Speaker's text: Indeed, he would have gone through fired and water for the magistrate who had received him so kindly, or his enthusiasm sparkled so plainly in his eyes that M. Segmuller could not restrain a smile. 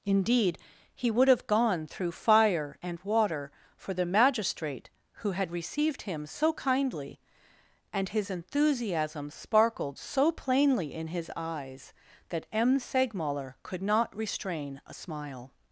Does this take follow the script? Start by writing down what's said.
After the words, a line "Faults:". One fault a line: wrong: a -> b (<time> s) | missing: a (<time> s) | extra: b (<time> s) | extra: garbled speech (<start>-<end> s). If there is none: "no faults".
Indeed, he would have gone through fire and water for the magistrate who had received him so kindly, and his enthusiasm sparkled so plainly in his eyes that M. Segmuller could not restrain a smile.
Faults:
wrong: fired -> fire (2.1 s)
wrong: or -> and (7.9 s)